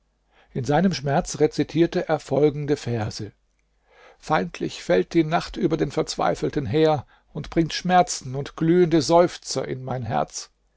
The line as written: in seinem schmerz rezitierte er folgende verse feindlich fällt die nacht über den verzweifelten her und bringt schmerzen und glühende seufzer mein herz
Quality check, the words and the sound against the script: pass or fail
fail